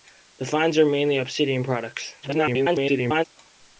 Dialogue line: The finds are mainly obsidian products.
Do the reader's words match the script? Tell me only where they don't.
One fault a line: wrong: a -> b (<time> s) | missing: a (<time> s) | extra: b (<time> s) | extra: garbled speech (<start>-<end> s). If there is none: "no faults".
extra: garbled speech (2.2-3.2 s)